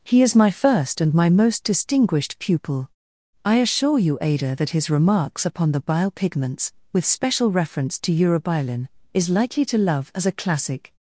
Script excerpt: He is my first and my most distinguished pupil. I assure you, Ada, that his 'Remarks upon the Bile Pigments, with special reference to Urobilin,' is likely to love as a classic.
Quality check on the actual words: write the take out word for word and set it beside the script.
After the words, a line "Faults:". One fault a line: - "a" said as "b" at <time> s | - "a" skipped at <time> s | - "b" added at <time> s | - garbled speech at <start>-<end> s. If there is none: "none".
He is my first and my most distinguished pupil. I assure you, Ada, that his 'Remarks upon the Bile Pigments, with special reference to Urobilin,' is likely to love as a classic.
Faults:
none